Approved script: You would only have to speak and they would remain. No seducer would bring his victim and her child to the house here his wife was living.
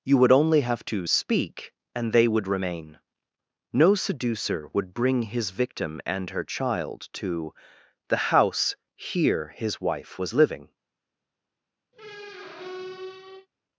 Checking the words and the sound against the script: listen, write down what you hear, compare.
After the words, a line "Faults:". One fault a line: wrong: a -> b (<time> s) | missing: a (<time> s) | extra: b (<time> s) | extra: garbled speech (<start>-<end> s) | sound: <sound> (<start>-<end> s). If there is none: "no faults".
You would only have to speak and they would remain. No seducer would bring his victim and her child to the house here his wife was living.
Faults:
sound: squeak (11.9-13.5 s)